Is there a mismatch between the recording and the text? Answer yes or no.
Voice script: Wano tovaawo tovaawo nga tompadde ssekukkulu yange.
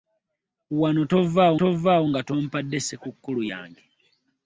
no